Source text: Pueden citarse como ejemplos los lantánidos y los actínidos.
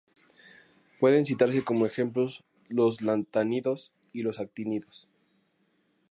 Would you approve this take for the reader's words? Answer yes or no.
yes